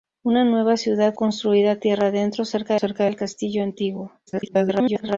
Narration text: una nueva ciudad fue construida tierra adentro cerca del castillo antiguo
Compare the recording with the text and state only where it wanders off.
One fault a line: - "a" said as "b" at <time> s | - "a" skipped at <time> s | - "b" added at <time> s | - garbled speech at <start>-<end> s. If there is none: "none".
- "fue" skipped at 1.1 s
- "cerca" added at 2.7 s
- garbled speech at 4.3-5.2 s